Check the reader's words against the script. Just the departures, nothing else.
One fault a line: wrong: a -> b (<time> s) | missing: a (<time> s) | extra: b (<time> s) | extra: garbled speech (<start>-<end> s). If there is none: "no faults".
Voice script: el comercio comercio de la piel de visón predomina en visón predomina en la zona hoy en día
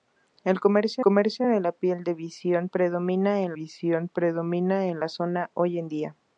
no faults